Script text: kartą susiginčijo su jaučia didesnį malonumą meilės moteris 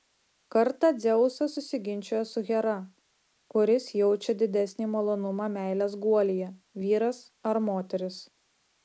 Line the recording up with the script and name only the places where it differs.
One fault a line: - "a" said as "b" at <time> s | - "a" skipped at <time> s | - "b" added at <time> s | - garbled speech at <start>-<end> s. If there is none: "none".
- "dzeusas" added at 1.0 s
- "hera kuris" added at 2.5 s
- "guolyje vyras ar" added at 6.0 s